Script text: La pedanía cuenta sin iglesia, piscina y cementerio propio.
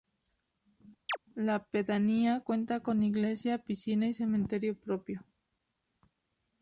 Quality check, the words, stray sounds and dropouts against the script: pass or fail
fail